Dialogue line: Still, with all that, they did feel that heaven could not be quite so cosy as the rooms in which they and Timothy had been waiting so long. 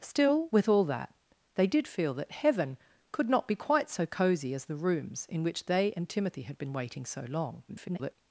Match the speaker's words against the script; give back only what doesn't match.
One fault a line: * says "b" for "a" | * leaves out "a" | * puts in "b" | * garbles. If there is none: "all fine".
* garbles